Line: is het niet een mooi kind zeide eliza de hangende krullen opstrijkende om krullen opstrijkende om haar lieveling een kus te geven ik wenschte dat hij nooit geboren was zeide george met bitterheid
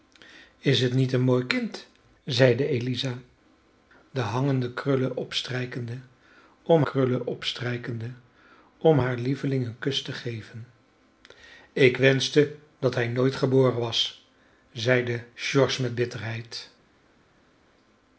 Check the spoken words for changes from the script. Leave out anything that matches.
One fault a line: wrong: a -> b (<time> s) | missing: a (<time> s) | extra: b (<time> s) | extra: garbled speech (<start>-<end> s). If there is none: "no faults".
no faults